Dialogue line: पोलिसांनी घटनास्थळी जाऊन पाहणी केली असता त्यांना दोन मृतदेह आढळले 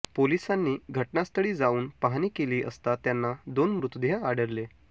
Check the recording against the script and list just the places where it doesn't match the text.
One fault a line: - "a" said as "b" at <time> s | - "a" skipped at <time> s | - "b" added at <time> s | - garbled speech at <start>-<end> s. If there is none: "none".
none